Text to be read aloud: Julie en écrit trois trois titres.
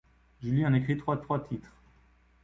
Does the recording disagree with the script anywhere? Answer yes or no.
no